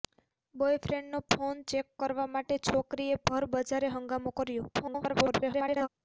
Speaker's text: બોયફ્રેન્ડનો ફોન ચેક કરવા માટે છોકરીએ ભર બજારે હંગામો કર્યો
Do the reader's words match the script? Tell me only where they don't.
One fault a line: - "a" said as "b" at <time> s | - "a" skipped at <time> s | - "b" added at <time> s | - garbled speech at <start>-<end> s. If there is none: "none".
- garbled speech at 4.7-5.9 s